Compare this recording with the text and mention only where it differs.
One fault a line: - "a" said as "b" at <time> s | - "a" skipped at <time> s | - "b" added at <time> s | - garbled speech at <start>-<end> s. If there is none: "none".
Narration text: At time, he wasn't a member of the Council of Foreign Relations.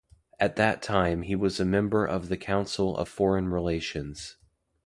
- "that" added at 0.6 s
- "wasn't" said as "was" at 1.3 s